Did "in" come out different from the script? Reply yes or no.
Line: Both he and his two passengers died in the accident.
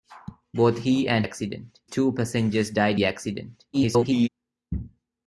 yes